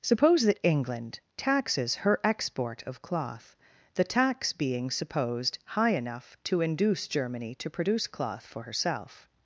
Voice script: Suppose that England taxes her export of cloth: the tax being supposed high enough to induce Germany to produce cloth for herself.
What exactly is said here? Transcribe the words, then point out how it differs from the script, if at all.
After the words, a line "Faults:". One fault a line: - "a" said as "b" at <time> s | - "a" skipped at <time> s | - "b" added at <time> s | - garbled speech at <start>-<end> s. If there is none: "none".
Suppose that England taxes her export of cloth: the tax being supposed high enough to induce Germany to produce cloth for herself.
Faults:
none